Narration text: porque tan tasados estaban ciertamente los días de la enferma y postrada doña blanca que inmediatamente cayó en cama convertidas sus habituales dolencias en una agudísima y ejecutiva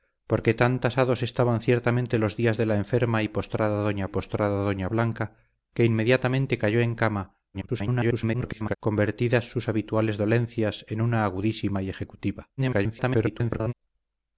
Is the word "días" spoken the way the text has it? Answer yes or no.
yes